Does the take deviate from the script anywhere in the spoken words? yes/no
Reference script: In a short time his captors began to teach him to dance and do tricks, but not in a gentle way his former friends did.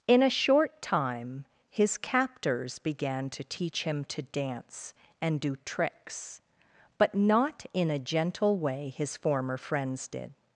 no